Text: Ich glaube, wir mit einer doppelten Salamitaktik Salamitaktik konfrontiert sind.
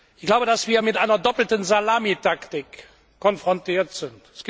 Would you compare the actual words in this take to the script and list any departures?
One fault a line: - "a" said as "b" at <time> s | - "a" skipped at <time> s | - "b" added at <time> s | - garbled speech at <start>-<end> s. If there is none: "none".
- "dass" added at 0.5 s
- "Salamitaktik" skipped at 2.6 s